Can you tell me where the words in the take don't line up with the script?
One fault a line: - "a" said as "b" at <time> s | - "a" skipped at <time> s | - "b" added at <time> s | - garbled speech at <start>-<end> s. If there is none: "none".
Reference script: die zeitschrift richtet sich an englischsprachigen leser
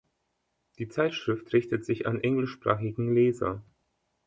none